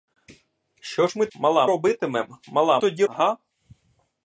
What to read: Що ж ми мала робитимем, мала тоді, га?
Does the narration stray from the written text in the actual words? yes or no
no